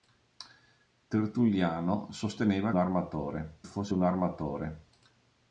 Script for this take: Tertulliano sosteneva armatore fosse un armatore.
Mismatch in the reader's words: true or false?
false